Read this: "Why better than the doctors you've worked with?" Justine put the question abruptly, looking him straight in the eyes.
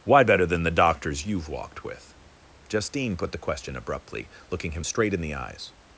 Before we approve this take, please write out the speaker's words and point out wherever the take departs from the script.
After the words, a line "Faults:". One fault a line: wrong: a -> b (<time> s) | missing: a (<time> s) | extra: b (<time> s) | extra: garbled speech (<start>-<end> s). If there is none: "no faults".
"Why better than the doctors you've walked with?" Justine put the question abruptly, looking him straight in the eyes.
Faults:
wrong: worked -> walked (1.5 s)